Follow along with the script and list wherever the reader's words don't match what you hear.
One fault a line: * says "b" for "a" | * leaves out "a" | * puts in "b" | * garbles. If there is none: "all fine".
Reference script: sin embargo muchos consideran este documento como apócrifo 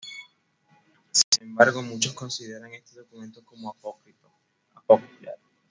all fine